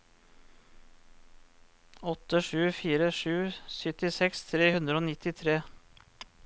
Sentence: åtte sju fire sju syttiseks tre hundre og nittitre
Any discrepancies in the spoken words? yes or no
no